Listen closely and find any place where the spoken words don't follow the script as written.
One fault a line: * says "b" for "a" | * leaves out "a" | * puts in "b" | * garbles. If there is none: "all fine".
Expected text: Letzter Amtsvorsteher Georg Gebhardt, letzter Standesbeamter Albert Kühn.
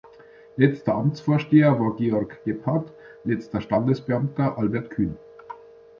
* puts in "war"